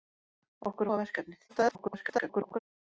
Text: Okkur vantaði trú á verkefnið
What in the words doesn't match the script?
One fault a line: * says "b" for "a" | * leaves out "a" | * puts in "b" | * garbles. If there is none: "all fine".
* leaves out "vantaði trú"
* garbles